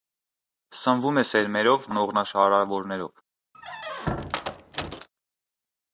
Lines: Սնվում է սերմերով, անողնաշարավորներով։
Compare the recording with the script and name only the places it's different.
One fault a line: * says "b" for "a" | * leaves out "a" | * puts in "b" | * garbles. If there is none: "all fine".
all fine